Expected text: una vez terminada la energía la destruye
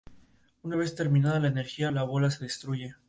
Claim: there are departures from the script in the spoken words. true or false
true